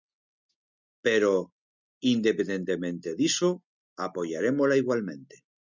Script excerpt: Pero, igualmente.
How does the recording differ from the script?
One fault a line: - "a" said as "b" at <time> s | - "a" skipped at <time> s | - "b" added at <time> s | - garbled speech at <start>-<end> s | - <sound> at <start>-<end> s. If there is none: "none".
- "independentemente diso apoiarémola" added at 2.0 s